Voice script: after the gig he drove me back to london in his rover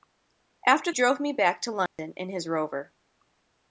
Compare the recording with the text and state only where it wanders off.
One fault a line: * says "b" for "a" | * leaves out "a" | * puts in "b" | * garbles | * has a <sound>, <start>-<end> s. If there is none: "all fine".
* leaves out "the gig he"
* has a dropout, 1.9-2.0 s